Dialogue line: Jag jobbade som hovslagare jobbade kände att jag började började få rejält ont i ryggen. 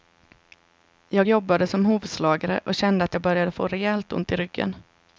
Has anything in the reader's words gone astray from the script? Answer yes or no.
yes